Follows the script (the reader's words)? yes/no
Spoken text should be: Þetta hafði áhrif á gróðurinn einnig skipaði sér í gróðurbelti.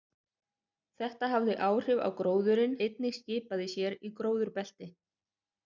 yes